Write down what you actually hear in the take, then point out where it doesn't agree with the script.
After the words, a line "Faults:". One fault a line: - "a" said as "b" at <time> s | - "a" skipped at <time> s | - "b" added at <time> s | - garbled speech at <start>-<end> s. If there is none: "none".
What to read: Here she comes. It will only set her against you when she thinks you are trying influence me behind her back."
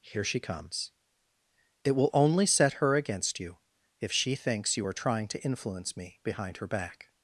Here she comes. It will only set her against you if she thinks you are trying to influence me behind her back."
Faults:
- "when" said as "if" at 4.0 s
- "to" added at 5.3 s